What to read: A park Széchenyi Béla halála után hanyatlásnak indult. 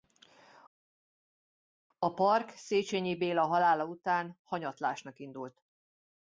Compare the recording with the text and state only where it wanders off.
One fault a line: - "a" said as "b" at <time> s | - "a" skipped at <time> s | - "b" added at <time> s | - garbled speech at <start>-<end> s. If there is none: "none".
none